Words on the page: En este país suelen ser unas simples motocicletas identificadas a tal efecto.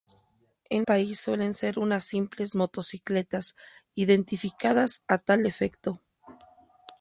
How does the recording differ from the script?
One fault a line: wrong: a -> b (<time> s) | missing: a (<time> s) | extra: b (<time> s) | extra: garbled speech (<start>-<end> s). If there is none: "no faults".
missing: este (0.9 s)